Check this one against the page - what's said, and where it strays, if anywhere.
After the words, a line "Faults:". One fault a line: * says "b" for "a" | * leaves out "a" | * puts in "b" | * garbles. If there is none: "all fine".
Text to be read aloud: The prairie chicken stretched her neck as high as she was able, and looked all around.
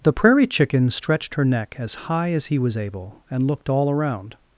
The prairie chicken stretched her neck as high as he was able, and looked all around.
Faults:
* says "he" for "she"